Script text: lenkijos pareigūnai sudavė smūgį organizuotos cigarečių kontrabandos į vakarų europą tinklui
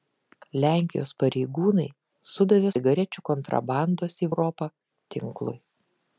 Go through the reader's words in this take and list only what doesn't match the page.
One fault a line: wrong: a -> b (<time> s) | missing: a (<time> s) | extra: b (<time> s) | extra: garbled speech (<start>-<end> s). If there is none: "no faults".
missing: smūgį organizuotos (2.7 s)
missing: vakarų (4.3 s)